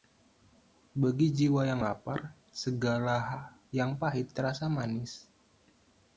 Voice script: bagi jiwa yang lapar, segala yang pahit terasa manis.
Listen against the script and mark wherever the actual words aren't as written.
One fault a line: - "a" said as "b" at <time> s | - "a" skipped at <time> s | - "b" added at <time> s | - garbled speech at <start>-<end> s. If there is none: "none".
none